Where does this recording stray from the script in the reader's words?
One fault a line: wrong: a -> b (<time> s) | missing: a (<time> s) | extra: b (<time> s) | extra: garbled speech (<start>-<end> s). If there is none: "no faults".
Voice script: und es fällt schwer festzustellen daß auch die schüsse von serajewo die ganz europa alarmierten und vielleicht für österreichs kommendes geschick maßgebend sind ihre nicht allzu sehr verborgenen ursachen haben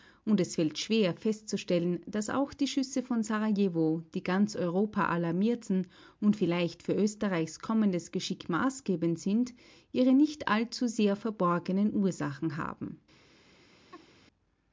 no faults